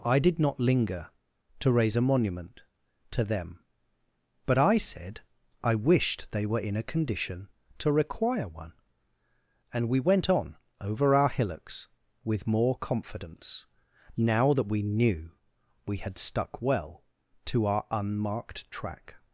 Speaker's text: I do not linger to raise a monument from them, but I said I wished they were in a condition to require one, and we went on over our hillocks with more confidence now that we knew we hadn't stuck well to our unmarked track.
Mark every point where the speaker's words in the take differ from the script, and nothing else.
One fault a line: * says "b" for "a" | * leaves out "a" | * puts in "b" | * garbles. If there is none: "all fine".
* says "did" for "do"
* says "to" for "from"
* says "had" for "hadn't"